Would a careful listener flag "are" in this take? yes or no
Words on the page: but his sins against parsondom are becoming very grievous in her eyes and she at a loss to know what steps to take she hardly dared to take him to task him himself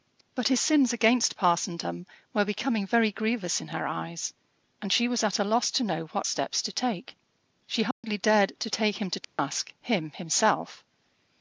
yes